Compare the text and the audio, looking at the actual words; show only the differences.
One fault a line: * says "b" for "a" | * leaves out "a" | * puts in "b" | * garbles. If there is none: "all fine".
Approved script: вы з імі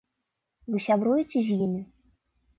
* puts in "сябруеце"